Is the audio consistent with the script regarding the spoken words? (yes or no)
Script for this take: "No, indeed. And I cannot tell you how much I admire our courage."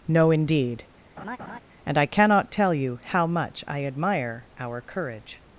yes